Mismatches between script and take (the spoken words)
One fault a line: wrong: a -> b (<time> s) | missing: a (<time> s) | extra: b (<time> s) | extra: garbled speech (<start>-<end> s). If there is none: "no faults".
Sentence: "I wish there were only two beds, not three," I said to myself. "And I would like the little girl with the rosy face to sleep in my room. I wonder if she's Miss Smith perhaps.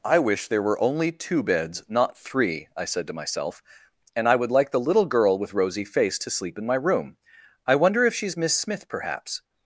missing: the (5.5 s)